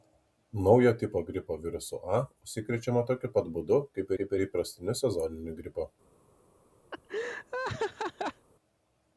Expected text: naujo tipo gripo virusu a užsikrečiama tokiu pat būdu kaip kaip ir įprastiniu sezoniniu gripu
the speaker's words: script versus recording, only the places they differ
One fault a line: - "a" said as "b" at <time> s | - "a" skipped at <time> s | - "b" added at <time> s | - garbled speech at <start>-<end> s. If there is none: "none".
none